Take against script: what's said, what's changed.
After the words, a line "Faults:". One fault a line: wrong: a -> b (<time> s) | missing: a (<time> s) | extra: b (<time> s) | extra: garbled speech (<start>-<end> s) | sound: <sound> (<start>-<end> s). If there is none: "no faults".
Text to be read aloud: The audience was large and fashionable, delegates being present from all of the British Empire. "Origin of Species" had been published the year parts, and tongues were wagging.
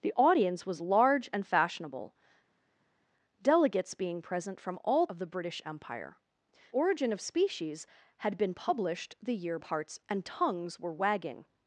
The audience was large and fashionable, delegates being present from all of the British Empire. "Origin of Species" had been published the year parts, and tongues were wagging.
Faults:
no faults